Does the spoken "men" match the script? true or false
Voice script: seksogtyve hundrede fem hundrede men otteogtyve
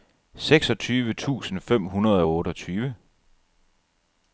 false